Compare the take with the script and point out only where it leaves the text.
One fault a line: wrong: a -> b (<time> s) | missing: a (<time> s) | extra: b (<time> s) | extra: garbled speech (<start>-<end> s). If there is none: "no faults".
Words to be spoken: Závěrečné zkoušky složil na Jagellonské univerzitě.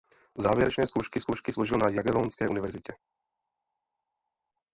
extra: zkoušky (1.2 s)